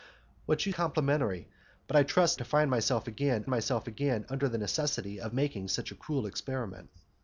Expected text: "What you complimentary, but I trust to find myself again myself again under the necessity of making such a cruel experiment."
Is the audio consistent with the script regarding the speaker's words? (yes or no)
yes